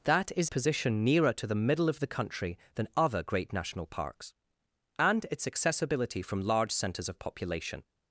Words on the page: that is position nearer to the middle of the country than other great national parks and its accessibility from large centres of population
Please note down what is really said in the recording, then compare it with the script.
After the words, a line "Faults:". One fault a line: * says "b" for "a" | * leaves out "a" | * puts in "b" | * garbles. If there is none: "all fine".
that is position nearer to the middle of the country than other great national parks and its accessibility from large centres of population
Faults:
all fine